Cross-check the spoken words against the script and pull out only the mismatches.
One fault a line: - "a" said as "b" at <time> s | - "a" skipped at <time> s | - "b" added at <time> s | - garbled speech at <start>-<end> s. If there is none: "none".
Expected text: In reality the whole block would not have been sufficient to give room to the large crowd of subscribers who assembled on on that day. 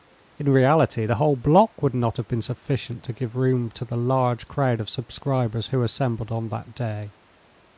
- "on" skipped at 6.5 s